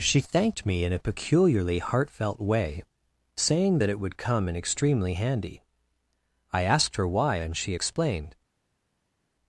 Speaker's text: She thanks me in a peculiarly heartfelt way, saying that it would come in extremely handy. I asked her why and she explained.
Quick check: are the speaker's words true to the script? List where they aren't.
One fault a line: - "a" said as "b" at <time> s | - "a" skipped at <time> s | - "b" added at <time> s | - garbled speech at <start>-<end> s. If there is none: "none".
- "thanks" said as "thanked" at 0.2 s